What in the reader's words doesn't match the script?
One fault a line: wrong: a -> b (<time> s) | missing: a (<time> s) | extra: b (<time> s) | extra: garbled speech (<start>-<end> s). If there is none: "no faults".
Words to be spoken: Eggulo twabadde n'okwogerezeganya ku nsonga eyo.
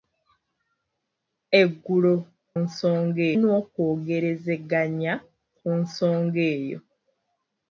wrong: twabadde -> nsonga (2.6 s)